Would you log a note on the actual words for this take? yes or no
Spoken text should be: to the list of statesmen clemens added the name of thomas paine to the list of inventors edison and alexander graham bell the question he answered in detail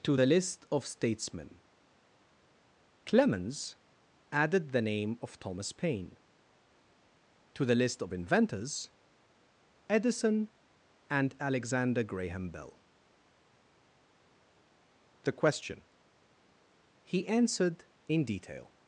no